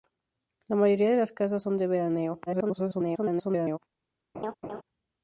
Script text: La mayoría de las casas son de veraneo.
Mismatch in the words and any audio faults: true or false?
true